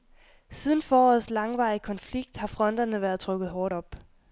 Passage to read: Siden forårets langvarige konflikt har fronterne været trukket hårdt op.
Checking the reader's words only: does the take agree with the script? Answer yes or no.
yes